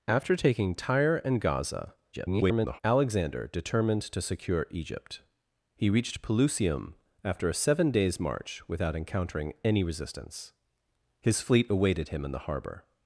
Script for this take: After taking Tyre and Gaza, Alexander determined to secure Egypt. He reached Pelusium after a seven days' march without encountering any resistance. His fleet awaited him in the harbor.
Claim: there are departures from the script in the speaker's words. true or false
true